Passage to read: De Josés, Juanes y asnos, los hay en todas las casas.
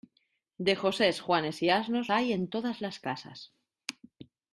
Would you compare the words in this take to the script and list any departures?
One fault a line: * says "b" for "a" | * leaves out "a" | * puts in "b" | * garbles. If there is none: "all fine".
* leaves out "los"